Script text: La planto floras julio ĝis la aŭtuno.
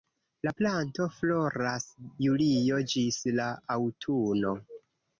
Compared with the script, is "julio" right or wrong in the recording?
right